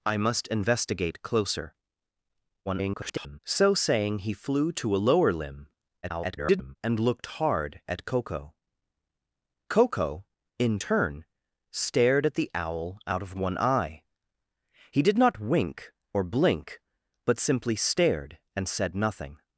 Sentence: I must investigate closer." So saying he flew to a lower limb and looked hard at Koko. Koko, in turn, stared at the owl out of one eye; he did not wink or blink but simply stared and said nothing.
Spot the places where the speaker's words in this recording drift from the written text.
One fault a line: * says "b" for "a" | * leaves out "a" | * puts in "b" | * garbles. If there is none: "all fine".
* garbles
* garbles